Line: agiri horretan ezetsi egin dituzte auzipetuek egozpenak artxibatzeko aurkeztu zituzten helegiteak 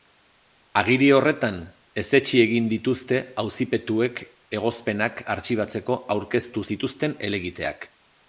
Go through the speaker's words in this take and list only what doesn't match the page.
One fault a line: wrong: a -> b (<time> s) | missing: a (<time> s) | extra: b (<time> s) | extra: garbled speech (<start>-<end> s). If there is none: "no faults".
no faults